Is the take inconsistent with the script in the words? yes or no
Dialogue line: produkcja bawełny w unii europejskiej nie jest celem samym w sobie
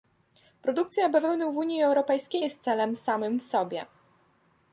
yes